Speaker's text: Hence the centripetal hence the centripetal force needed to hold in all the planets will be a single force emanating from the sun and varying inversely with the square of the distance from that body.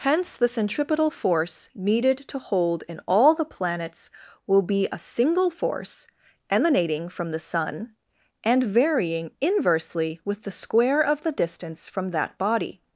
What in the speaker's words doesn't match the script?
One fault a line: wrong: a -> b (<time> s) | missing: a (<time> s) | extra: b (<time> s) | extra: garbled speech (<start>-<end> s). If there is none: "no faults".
missing: hence the centripetal (1.1 s)